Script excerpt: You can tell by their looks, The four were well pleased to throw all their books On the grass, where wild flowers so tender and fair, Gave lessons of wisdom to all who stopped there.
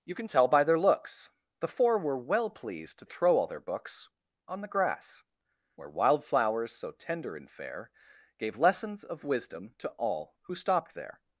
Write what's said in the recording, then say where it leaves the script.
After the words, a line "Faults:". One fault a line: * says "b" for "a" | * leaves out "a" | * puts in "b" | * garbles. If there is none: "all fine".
You can tell by their looks, The four were well pleased to throw all their books On the grass, where wild flowers so tender and fair, Gave lessons of wisdom to all who stopped there.
Faults:
all fine